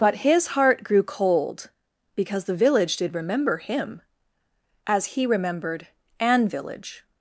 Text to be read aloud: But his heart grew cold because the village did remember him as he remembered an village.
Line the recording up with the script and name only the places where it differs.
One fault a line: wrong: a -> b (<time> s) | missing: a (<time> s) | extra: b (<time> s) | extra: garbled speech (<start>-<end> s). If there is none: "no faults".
no faults